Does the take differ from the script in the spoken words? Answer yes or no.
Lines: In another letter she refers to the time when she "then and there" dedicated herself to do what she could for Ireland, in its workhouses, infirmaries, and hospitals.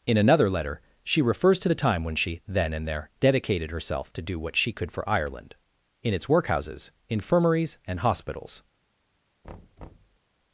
no